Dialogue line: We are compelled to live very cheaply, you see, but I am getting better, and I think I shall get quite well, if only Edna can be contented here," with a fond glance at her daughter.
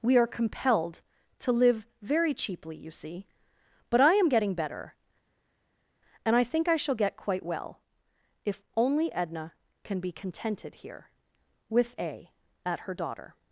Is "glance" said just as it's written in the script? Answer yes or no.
no